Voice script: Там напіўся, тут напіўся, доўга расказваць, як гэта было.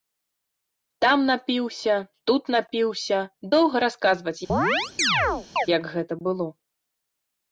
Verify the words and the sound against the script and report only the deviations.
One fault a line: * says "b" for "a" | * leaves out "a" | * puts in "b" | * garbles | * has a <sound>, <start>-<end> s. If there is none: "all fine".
* has a chirp, 4.5-5.7 s